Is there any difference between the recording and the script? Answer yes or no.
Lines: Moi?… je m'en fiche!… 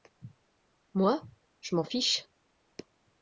no